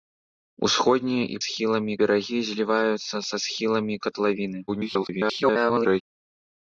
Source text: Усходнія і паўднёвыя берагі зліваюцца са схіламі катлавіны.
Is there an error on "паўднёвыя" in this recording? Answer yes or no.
yes